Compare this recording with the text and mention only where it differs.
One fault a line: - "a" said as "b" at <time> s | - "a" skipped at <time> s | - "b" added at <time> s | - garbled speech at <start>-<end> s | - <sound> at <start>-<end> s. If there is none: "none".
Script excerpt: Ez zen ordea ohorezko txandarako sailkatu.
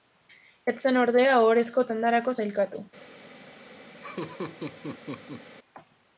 - laugh at 3.9-5.5 s